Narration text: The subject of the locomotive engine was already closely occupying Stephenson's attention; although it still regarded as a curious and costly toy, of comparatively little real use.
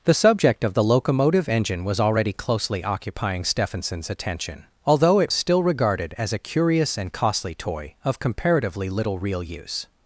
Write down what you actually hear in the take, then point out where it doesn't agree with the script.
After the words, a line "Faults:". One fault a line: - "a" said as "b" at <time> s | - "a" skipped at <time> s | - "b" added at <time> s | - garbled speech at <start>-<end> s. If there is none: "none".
The subject of the locomotive engine was already closely occupying Stephenson's attention; although it still regarded as a curious and costly toy, of comparatively little real use.
Faults:
none